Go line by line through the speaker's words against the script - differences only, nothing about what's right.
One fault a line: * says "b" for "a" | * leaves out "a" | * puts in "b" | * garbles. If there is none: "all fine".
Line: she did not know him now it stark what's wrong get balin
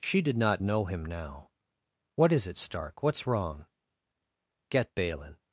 * puts in "what is"